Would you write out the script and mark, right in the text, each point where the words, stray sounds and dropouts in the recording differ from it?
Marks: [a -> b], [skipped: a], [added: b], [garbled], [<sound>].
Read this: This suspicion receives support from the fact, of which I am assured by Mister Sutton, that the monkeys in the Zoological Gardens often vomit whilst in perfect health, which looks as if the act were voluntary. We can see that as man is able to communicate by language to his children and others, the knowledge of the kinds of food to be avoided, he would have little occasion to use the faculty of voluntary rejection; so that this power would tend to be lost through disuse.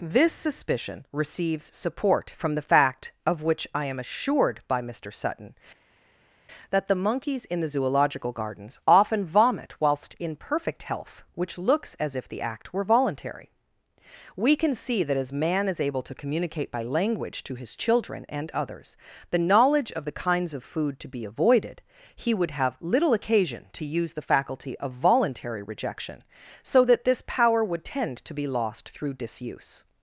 This suspicion receives support from the fact, of which I am assured by Mister Sutton, that the monkeys in the Zoological Gardens often vomit whilst in perfect health, which looks as if the act were voluntary. We can see that as man is able to communicate by language to his children and others, the knowledge of the kinds of food to be avoided, he would have little occasion to use the faculty of voluntary rejection; so that this power would tend to be lost through disuse.